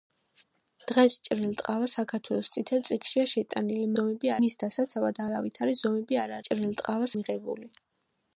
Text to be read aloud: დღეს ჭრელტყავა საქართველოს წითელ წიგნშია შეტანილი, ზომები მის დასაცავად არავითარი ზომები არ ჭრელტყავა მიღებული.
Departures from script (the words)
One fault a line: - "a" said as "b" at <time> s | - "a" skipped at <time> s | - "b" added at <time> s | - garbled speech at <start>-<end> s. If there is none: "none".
none